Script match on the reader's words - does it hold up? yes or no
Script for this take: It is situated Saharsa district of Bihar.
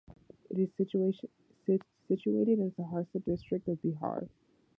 no